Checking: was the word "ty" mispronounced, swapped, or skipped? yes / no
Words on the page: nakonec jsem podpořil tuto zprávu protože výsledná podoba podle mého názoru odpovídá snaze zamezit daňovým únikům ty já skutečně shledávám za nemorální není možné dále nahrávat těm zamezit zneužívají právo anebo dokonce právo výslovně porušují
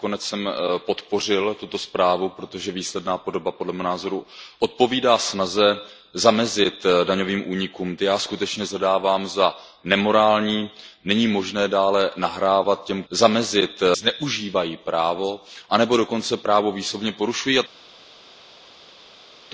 no